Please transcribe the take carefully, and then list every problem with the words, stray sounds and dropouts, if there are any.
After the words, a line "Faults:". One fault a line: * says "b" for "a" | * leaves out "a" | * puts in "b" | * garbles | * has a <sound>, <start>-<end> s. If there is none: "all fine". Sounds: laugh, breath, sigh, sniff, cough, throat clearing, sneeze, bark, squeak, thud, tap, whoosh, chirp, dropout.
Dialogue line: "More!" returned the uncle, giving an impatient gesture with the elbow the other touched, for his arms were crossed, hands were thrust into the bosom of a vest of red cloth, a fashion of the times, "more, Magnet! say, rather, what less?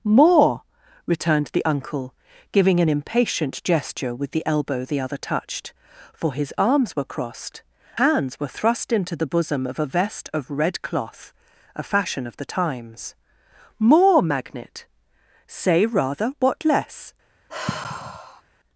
"More!" returned the uncle, giving an impatient gesture with the elbow the other touched, for his arms were crossed, hands were thrust into the bosom of a vest of red cloth, a fashion of the times, "more, Magnet! say, rather, what less?
Faults:
* has a sigh, 17.5-18.4 s